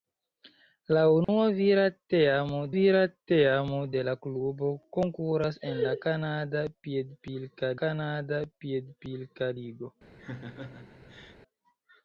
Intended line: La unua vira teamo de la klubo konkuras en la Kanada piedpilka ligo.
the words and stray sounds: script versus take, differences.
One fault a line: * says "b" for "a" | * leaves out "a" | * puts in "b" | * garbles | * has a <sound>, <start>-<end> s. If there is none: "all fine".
* has a dropout, 1.2-1.3 s
* puts in "vira teamo"
* puts in "Kanada piedpilka"
* has a laugh, 10.2-11.4 s